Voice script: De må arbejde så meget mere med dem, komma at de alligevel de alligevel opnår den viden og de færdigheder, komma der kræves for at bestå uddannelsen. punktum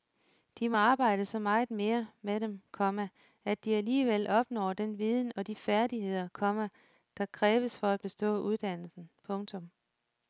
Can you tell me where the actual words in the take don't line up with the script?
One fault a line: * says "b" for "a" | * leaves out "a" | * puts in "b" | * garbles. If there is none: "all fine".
* leaves out "de alligevel"